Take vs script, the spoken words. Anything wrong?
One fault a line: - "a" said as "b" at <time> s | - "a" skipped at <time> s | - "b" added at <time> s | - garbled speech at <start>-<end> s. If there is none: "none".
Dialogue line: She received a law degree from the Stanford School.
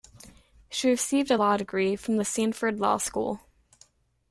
- "Law" added at 2.8 s